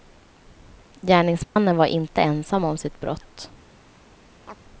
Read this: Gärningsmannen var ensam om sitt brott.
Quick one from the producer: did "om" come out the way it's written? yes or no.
yes